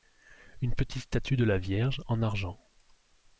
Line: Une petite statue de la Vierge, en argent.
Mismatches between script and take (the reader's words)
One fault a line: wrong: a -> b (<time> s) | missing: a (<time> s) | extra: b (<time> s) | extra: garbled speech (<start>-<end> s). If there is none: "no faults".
no faults